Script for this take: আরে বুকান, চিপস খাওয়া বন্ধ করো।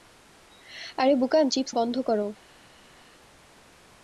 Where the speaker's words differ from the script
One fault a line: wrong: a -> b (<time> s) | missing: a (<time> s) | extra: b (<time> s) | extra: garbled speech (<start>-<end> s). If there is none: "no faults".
missing: খাওয়া (1.7 s)